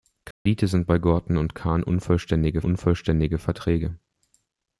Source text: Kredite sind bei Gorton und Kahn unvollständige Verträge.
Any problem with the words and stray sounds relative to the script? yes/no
yes